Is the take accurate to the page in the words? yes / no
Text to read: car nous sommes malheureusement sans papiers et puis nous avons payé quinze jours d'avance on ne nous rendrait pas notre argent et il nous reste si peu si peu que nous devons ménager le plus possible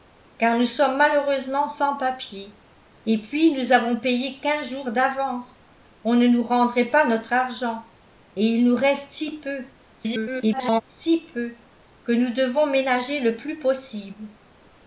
no